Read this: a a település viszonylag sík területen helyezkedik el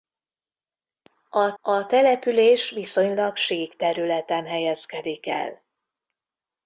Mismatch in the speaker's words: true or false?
false